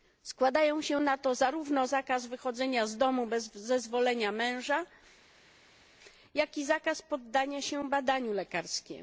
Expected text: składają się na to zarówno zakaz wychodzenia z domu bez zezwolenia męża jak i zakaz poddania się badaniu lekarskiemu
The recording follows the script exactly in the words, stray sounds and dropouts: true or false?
true